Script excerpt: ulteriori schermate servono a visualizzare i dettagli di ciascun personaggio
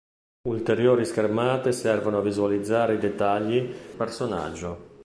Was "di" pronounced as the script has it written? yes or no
no